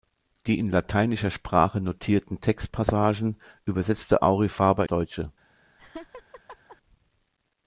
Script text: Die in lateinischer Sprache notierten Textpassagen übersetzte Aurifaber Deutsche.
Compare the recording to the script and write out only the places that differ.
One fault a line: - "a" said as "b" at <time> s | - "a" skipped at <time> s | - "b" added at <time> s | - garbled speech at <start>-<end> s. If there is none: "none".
none